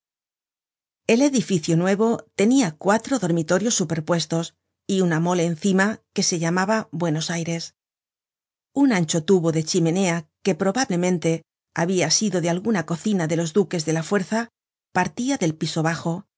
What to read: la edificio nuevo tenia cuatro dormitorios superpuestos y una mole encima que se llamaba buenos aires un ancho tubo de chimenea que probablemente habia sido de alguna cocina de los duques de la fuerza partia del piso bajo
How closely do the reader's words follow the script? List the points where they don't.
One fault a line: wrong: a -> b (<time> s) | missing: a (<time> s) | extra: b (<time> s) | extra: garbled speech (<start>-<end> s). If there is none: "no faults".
wrong: la -> el (1.1 s)